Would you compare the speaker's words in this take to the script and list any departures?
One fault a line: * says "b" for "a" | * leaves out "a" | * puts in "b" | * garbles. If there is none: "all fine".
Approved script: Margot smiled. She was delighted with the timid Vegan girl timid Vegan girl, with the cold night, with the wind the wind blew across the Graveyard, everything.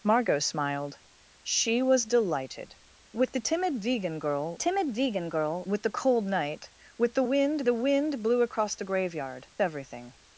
all fine